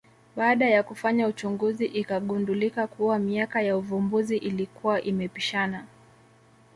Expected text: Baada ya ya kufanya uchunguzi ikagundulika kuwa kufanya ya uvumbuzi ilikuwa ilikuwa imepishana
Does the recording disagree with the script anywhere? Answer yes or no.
yes